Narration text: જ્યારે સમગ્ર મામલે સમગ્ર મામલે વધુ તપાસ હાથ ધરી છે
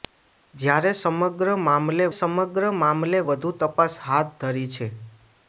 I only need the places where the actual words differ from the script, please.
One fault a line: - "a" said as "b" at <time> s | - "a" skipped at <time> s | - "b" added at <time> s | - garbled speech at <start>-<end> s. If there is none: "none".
none